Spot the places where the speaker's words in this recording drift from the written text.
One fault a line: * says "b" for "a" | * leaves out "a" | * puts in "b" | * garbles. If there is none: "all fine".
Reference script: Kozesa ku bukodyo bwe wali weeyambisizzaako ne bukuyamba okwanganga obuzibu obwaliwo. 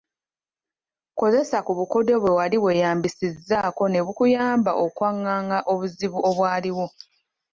all fine